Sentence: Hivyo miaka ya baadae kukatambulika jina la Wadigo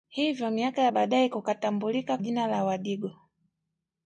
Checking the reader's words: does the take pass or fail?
pass